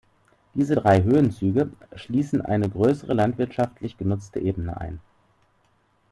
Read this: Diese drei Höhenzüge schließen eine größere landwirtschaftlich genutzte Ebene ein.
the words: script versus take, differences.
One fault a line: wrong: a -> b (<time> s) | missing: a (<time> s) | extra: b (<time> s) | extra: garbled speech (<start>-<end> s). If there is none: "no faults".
no faults